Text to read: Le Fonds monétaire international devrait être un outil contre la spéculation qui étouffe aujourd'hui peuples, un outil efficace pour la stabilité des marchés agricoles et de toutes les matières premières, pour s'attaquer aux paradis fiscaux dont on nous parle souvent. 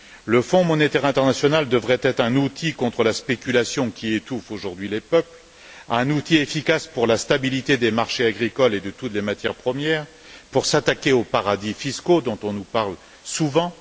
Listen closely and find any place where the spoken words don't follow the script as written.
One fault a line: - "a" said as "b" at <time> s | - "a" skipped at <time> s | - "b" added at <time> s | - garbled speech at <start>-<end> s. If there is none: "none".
- "les" added at 4.9 s